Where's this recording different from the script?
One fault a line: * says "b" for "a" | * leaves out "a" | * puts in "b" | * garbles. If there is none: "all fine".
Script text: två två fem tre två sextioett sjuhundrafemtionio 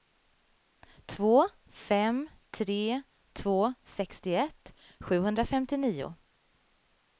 * leaves out "två"